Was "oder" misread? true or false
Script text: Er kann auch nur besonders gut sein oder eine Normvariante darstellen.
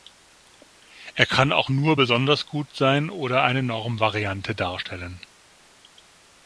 false